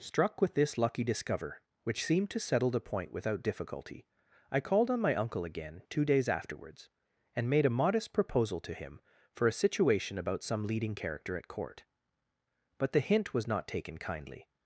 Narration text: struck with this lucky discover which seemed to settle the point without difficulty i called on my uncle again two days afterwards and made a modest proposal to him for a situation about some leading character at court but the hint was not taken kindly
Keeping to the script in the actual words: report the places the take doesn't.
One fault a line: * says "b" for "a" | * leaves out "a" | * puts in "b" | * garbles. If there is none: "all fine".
all fine